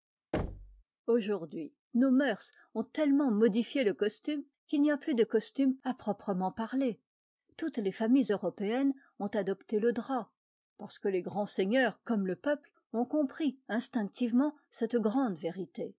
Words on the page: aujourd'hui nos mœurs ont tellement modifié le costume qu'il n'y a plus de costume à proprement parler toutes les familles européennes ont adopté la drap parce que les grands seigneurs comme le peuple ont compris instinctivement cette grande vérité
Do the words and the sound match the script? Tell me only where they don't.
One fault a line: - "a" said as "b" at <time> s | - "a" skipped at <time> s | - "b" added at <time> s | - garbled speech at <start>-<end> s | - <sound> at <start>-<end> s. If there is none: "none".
- thud at 0.3-0.8 s
- "la" said as "le" at 9.8 s